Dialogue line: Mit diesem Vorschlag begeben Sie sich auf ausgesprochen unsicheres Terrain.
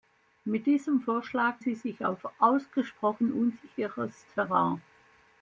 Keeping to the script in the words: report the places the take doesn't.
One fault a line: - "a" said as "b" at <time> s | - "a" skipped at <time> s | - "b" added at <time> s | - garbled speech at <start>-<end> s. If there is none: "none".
- "begeben" skipped at 1.6 s